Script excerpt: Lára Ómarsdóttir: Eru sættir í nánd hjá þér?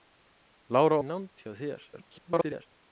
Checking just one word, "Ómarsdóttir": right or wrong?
wrong